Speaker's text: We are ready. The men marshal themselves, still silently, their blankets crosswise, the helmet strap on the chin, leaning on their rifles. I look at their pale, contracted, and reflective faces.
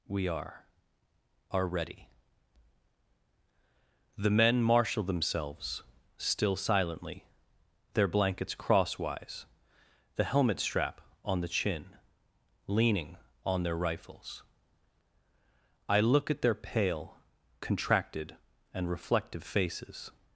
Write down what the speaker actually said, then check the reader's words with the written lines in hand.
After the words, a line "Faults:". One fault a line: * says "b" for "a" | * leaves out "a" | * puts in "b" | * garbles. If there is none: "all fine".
We are are ready. The men marshal themselves, still silently, their blankets crosswise, the helmet strap on the chin, leaning on their rifles. I look at their pale, contracted, and reflective faces.
Faults:
* puts in "are"